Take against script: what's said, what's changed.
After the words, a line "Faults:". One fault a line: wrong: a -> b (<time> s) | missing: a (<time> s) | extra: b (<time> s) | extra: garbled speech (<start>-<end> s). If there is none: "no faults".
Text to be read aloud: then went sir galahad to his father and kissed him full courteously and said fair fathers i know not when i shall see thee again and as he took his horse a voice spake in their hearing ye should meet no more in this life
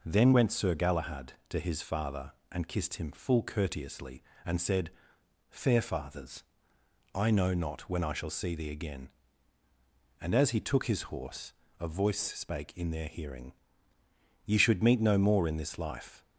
then went sir galahad to his father and kissed him full courteously and said fair fathers i know not when i shall see thee again and as he took his horse a voice spake in their hearing ye should meet no more in this life
Faults:
no faults